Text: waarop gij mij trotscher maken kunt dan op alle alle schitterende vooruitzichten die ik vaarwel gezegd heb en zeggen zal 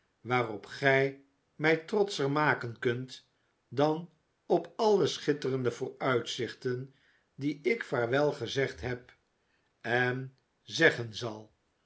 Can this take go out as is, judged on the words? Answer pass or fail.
fail